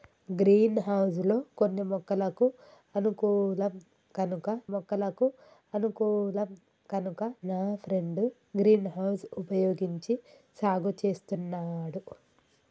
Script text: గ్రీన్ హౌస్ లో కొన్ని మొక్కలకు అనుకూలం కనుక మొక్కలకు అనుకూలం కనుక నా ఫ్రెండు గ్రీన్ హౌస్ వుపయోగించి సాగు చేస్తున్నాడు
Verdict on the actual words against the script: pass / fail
pass